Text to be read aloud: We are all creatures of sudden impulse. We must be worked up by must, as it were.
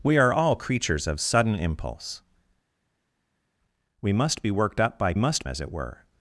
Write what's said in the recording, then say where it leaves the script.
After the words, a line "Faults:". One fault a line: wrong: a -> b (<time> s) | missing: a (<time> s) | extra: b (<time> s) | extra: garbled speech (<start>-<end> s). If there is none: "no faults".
We are all creatures of sudden impulse. We must be worked up by must, as it were.
Faults:
no faults